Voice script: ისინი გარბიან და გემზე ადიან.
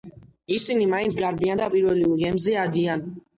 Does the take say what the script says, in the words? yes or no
no